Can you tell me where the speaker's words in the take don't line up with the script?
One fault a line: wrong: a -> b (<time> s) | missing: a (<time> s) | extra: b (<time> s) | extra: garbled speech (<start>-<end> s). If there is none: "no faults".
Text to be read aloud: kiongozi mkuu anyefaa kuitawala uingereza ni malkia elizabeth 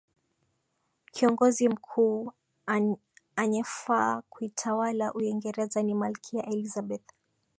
no faults